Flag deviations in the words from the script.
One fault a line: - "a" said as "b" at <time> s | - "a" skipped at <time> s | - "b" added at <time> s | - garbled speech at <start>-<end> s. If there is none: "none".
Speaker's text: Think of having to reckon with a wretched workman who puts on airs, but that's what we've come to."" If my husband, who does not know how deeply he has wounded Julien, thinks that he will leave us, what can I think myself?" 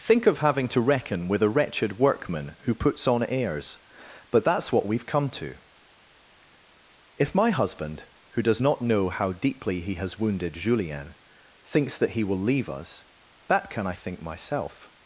- "what" said as "that" at 13.5 s